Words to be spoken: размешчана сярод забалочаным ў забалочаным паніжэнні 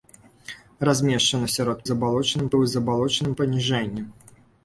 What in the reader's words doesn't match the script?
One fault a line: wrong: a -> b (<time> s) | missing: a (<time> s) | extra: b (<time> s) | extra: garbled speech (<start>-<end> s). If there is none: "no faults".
no faults